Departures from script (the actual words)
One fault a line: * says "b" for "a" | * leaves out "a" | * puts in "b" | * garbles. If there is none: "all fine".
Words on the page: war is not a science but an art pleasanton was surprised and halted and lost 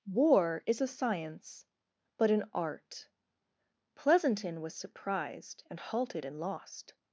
* leaves out "not"